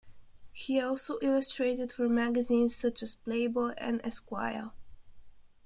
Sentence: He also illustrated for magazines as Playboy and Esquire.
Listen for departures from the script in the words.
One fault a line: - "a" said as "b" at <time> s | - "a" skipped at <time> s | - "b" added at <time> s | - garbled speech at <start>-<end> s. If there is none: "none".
- "such" added at 2.7 s